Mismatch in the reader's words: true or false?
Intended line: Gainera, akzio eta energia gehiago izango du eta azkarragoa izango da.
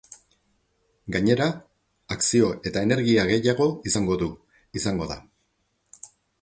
true